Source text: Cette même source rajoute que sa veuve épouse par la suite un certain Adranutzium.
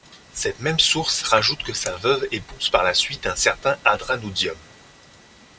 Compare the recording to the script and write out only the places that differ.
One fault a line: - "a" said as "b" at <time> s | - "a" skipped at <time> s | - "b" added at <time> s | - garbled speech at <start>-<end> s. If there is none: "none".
none